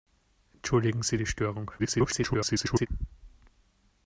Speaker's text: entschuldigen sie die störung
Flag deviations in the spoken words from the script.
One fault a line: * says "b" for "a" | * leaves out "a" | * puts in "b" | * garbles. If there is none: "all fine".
* garbles